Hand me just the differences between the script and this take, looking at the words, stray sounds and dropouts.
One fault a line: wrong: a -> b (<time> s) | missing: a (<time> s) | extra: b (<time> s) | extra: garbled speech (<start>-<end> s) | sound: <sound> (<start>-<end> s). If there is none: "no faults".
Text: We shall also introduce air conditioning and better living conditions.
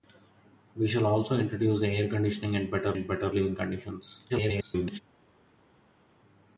extra: and better (2.9 s)
extra: garbled speech (4.3-5.0 s)